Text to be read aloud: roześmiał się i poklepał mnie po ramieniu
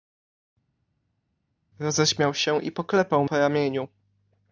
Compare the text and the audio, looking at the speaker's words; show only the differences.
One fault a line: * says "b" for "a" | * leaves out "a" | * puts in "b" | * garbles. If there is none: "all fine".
* leaves out "mnie"